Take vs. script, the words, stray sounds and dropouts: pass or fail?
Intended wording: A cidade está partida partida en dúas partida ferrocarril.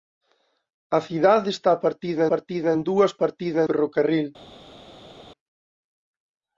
pass